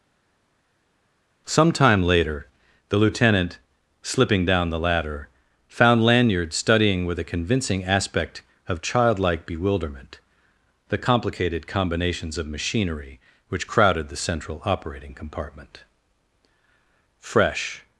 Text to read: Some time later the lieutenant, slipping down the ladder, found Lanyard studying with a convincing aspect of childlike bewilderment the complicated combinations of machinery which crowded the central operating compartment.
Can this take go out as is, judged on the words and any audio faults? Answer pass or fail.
fail